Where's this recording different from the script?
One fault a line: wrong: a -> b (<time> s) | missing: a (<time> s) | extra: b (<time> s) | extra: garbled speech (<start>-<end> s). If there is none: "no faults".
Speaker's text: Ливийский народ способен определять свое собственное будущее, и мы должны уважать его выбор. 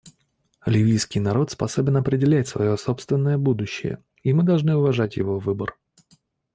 no faults